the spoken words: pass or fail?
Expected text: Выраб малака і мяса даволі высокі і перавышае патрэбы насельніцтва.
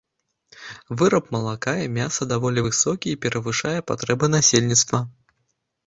pass